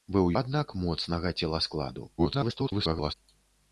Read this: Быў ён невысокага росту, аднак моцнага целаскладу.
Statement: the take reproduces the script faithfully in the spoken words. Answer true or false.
false